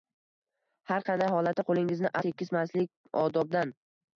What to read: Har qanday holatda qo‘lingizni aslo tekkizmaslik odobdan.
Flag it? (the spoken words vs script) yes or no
yes